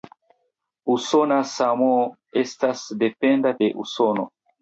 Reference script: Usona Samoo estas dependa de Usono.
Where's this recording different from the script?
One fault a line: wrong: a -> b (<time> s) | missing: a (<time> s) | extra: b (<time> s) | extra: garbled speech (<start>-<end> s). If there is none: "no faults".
no faults